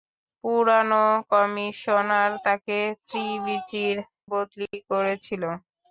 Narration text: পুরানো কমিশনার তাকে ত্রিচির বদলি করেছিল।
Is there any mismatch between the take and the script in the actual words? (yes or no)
no